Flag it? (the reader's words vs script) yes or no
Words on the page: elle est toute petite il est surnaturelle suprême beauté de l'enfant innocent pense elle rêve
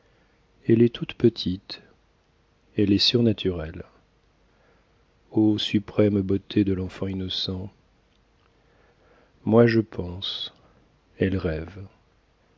yes